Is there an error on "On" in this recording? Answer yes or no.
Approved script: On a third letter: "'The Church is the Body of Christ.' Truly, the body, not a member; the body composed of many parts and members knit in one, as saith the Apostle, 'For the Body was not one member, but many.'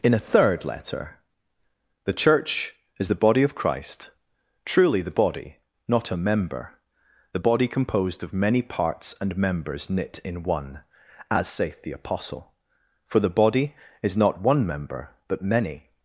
yes